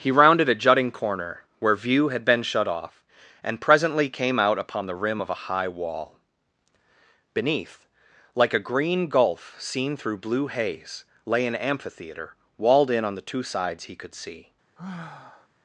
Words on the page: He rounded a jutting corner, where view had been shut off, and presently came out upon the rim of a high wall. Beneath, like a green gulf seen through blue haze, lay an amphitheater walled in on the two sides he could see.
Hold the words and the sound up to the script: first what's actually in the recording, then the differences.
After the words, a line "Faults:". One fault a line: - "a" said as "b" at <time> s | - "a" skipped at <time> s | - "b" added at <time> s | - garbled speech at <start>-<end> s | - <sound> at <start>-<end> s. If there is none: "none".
He rounded a jutting corner, where view had been shut off, and presently came out upon the rim of a high wall. Beneath, like a green gulf seen through blue haze, lay an amphitheater walled in on the two sides he could see.
Faults:
- sigh at 14.8-15.5 s